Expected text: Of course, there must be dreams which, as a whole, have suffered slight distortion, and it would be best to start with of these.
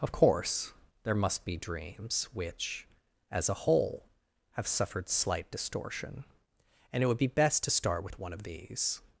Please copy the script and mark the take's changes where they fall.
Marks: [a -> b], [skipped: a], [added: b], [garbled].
Of course, there must be dreams which, as a whole, have suffered slight distortion, and it would be best to start with [added: one] of these.